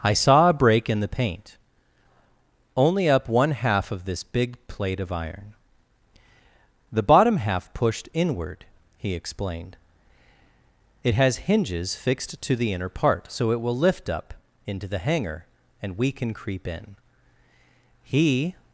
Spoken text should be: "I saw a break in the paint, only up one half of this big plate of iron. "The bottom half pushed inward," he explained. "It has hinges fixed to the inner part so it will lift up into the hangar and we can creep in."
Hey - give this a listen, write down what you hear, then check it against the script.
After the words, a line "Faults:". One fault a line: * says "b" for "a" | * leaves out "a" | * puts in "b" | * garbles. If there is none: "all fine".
"I saw a break in the paint, only up one half of this big plate of iron. "The bottom half pushed inward," he explained. "It has hinges fixed to the inner part so it will lift up into the hangar and we can creep in." He
Faults:
* puts in "He"